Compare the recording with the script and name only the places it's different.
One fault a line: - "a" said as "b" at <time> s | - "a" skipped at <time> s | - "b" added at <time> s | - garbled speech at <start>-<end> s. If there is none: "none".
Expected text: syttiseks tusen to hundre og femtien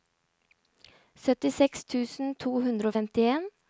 none